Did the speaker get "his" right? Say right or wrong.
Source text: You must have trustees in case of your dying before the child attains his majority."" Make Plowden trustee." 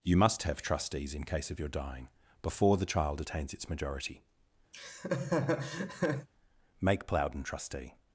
wrong